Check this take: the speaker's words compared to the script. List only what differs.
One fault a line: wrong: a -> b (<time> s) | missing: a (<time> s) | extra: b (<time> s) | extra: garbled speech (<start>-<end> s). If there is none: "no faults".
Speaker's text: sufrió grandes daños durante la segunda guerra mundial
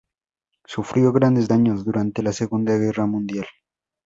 no faults